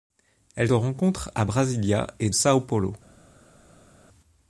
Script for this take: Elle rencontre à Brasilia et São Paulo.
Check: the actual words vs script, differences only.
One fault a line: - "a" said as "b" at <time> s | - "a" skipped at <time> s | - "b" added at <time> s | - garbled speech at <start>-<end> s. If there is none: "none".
none